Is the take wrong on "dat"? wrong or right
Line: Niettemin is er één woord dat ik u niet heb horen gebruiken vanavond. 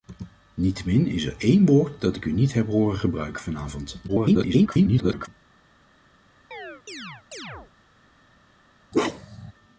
right